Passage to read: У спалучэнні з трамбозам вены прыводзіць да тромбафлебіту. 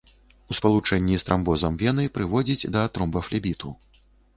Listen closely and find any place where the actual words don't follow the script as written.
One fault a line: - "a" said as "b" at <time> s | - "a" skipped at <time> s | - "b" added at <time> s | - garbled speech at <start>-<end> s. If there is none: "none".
none